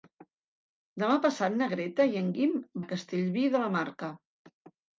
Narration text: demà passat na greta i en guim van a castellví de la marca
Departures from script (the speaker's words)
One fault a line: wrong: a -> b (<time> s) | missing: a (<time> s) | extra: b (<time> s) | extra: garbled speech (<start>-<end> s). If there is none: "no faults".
missing: van (2.5 s)